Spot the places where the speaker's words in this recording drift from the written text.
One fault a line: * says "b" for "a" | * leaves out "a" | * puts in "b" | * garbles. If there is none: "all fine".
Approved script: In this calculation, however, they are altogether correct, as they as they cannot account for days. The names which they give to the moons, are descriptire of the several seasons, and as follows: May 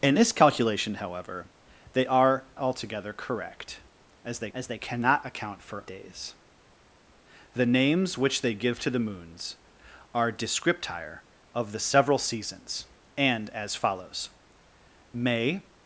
all fine